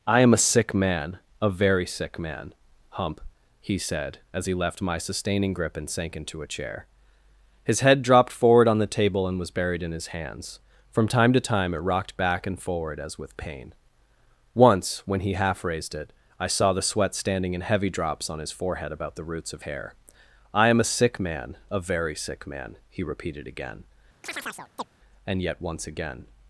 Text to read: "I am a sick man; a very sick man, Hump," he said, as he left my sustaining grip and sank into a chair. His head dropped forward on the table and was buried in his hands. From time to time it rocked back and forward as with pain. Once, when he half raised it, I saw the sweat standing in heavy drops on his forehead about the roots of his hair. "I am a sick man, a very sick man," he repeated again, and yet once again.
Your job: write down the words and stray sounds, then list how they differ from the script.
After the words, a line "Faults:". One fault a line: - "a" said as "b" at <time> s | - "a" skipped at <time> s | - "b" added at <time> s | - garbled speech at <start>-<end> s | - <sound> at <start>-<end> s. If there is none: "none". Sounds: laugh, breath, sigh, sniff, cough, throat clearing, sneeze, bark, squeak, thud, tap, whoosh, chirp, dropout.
"I am a sick man; a very sick man, Hump," he said, as he left my sustaining grip and sank into a chair. His head dropped forward on the table and was buried in his hands. From time to time it rocked back and forward as with pain. Once, when he half raised it, I saw the sweat standing in heavy drops on his forehead about the roots of hair. "I am a sick man, a very sick man," he repeated again, and yet once again.
Faults:
- "his" skipped at 19.6 s
- chirp at 24.2-24.9 s